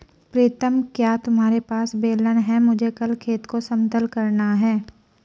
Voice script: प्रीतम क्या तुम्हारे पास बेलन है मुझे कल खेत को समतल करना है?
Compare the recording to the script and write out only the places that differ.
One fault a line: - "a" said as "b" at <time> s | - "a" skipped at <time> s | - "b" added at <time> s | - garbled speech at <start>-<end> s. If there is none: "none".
none